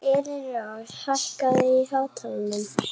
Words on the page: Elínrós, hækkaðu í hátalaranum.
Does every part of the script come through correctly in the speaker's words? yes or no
yes